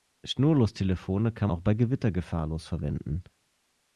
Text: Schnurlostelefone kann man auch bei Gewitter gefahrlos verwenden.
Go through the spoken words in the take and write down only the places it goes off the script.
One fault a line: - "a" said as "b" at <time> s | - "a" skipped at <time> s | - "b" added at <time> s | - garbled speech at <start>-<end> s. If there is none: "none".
- "man" skipped at 1.5 s